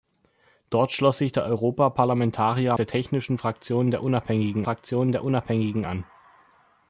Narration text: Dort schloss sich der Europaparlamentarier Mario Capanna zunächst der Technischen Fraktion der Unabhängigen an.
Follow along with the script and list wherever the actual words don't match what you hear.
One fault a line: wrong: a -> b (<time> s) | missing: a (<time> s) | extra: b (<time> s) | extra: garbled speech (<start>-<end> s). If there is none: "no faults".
wrong: Mario Capanna zunächst -> Der Technischen Fraktion (2.8 s)
wrong: Technischen -> Unabhängigen (4.0 s)